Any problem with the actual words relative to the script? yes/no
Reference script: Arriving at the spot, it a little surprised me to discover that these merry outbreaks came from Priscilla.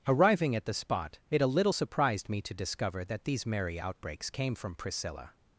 no